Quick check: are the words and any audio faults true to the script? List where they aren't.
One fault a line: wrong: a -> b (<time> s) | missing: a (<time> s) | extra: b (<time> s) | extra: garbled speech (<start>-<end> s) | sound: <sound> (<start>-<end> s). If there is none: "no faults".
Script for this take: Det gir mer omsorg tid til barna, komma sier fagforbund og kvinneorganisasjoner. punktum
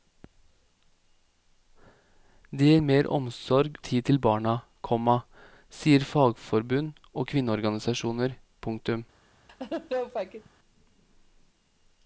sound: laugh (9.5-10.5 s)